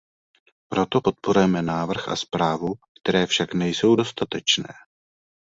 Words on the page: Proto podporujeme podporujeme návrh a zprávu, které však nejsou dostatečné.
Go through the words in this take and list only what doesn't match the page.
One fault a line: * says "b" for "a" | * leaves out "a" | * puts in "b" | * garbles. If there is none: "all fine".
* leaves out "podporujeme"